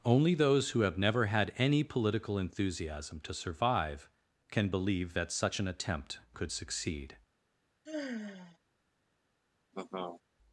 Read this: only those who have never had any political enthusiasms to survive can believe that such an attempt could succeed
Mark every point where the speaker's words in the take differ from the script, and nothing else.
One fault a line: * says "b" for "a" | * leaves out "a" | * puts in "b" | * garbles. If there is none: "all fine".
* says "enthusiasm" for "enthusiasms"